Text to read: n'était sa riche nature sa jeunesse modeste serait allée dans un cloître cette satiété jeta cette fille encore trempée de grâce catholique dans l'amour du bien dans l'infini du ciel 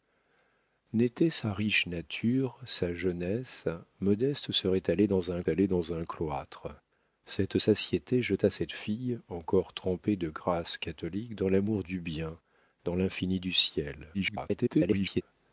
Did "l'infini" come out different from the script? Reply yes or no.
no